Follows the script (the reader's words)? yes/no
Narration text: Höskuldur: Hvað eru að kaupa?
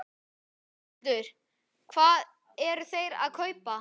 no